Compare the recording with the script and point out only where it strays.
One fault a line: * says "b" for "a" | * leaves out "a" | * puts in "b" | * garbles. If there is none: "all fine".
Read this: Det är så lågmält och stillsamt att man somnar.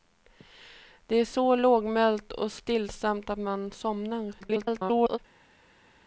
* garbles